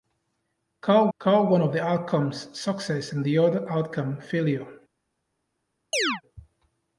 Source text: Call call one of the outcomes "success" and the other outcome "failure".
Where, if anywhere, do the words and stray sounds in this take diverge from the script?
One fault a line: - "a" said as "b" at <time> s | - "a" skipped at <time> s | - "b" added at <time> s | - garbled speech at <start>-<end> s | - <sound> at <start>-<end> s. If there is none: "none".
- chirp at 5.9-6.2 s